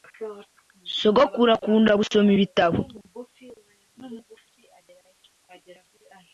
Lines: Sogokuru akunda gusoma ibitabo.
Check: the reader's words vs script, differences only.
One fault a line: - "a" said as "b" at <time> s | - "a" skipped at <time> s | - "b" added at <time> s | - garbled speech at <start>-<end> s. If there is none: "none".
none